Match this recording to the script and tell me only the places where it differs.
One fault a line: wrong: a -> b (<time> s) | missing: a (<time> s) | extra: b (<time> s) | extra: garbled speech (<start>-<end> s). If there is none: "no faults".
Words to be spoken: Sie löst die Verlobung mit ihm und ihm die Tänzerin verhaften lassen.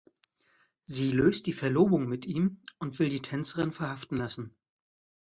wrong: ihm -> will (3.0 s)